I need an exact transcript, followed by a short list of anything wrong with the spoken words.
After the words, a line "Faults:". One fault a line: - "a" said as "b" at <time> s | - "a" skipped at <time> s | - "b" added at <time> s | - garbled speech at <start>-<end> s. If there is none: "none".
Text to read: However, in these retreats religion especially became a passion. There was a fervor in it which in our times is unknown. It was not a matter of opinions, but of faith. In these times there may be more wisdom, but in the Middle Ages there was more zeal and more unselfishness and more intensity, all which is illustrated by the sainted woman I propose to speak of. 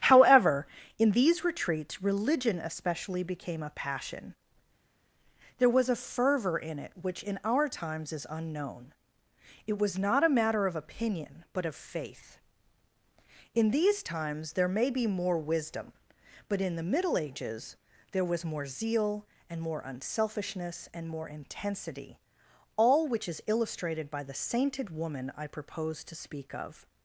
However, in these retreats religion especially became a passion. There was a fervor in it which in our times is unknown. It was not a matter of opinion, but of faith. In these times there may be more wisdom, but in the Middle Ages there was more zeal and more unselfishness and more intensity, all which is illustrated by the sainted woman I propose to speak of.
Faults:
- "opinions" said as "opinion" at 10.8 s